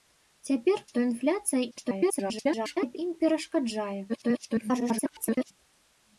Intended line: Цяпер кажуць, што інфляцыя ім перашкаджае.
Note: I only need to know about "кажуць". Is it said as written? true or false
false